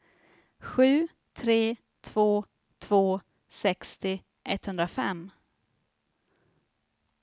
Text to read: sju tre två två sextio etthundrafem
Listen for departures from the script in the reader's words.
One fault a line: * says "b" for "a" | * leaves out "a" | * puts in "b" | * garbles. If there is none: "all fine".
all fine